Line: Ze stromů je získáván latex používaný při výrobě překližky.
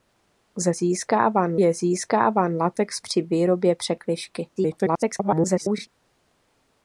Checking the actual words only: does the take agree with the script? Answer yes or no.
no